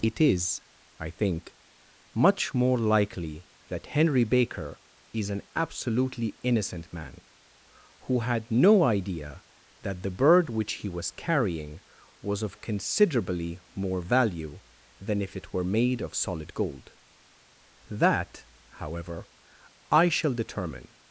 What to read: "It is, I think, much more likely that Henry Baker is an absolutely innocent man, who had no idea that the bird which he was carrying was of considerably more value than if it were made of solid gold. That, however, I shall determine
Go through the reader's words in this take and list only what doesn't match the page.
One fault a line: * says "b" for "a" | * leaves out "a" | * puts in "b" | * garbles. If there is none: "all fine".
all fine